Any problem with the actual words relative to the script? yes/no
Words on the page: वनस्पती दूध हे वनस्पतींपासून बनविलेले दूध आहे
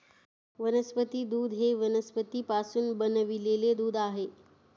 no